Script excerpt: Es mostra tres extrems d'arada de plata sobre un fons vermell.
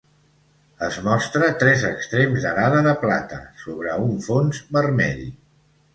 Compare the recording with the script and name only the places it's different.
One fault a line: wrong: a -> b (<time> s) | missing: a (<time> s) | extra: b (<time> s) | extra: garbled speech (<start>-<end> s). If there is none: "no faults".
no faults